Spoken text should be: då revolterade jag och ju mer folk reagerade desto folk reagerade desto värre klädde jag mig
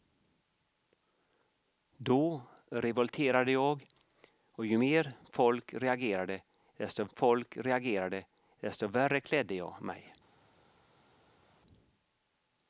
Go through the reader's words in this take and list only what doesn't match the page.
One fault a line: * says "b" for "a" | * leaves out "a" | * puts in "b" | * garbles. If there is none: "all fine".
all fine